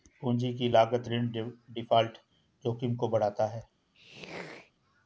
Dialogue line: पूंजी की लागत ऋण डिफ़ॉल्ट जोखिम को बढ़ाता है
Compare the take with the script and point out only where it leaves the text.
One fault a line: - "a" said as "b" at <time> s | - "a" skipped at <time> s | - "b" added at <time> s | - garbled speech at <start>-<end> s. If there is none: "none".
none